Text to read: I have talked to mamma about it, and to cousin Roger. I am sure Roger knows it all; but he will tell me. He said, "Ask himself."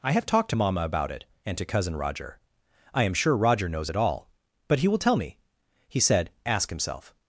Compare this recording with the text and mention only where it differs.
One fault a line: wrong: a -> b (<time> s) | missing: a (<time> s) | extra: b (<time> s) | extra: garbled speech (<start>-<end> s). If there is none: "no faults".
no faults